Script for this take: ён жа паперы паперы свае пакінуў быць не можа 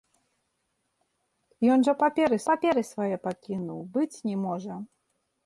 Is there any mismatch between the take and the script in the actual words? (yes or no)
no